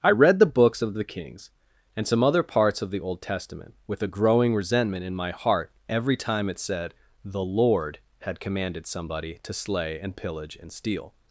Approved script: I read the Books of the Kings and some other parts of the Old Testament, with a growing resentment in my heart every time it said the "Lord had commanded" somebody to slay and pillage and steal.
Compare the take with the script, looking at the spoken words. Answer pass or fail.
pass